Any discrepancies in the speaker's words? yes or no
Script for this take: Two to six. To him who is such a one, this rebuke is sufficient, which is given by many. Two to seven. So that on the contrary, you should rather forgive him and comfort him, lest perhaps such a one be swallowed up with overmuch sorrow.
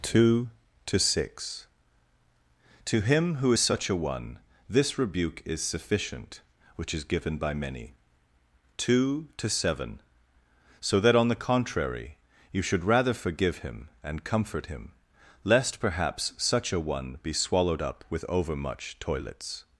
yes